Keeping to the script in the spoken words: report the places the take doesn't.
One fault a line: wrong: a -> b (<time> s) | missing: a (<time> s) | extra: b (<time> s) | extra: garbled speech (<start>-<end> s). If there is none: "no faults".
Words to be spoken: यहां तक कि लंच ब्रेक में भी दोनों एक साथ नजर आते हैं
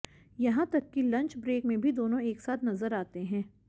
no faults